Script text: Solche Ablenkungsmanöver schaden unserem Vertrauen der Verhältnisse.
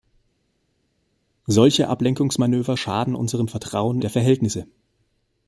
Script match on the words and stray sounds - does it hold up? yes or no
yes